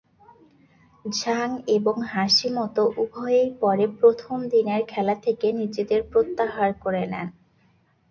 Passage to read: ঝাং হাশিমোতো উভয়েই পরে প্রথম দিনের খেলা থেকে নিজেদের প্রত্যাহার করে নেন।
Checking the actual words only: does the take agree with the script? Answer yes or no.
no